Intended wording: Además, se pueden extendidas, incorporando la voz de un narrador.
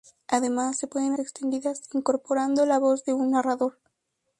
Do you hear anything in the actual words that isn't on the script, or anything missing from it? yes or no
no